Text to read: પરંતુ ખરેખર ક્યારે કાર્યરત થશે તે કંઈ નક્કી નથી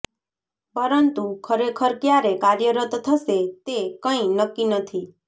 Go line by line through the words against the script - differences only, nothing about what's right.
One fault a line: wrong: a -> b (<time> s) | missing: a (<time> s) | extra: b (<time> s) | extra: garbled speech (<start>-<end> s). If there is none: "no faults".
no faults